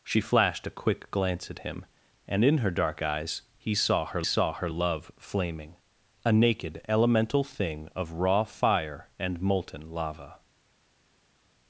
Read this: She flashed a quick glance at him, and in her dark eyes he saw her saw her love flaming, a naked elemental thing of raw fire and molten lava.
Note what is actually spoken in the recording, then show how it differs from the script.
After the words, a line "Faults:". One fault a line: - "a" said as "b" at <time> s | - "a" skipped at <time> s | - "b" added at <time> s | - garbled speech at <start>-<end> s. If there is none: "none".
She flashed a quick glance at him, and in her dark eyes he saw her saw her love flaming, a naked elemental thing of raw fire and molten lava.
Faults:
none